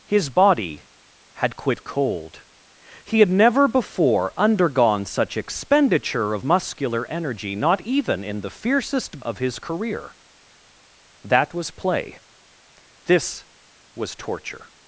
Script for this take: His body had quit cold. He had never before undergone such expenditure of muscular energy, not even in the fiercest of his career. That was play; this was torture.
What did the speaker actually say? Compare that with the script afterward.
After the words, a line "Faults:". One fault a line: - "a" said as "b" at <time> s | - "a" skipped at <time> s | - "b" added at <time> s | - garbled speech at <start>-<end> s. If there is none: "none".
His body had quit cold. He had never before undergone such expenditure of muscular energy, not even in the fiercest of his career. That was play; this was torture.
Faults:
none